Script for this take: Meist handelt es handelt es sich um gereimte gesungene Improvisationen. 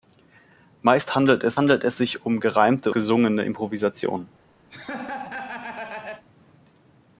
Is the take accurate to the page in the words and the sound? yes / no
no